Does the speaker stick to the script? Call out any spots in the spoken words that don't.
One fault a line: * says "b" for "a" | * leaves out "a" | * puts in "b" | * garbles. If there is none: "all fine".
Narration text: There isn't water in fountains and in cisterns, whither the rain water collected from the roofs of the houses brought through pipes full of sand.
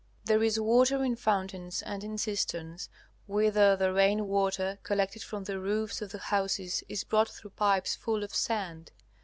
* says "is" for "isn't"
* puts in "is"